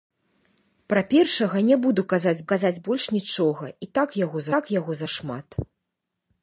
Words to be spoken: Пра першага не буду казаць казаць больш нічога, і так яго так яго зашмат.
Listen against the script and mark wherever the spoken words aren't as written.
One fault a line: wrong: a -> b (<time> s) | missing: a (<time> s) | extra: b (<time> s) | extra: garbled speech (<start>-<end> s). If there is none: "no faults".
no faults